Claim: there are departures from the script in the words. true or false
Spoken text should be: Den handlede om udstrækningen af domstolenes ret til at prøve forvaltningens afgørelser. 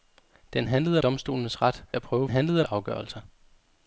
true